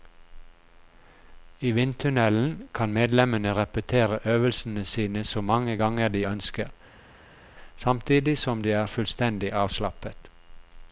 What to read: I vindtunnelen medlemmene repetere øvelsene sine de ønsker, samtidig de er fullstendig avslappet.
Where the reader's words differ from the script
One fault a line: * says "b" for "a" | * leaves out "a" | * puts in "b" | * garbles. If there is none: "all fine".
* puts in "kan"
* puts in "så mange ganger"
* puts in "som"